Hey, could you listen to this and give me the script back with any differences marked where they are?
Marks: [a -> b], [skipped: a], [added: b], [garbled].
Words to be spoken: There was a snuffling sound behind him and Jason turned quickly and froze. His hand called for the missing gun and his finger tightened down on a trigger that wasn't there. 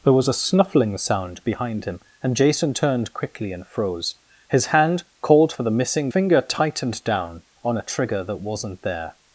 There was a snuffling sound behind him and Jason turned quickly and froze. His hand called for the missing [skipped: gun and his] finger tightened down on a trigger that wasn't there.